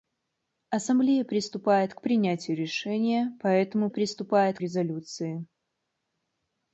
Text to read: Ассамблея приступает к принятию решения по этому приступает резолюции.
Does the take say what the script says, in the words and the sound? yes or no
yes